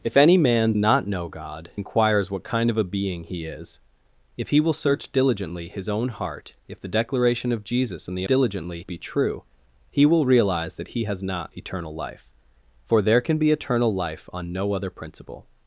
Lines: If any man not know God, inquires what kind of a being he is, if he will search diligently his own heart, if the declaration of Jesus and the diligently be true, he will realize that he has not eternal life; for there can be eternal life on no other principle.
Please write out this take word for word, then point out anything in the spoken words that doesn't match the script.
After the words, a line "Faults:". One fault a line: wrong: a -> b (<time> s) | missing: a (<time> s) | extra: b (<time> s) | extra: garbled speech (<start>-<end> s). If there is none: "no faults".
If any man not know God, inquires what kind of a being he is, if he will search diligently his own heart, if the declaration of Jesus and the diligently be true, he will realize that he has not eternal life; for there can be eternal life on no other principle.
Faults:
no faults